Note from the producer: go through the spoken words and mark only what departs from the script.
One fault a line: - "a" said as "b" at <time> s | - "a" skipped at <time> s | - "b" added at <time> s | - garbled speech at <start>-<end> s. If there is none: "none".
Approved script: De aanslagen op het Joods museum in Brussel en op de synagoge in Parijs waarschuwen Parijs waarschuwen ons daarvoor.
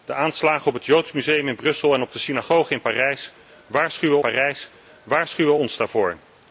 none